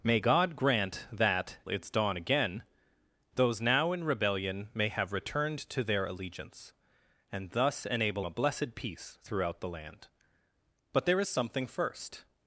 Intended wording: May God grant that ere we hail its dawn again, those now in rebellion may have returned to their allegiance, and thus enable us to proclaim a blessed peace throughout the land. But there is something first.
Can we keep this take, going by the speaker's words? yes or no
no